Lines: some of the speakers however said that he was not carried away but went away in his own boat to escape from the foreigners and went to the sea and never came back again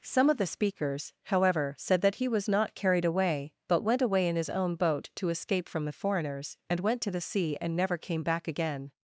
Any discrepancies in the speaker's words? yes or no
no